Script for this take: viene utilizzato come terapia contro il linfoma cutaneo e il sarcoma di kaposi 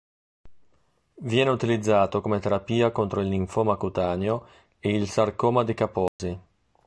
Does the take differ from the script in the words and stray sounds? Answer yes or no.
yes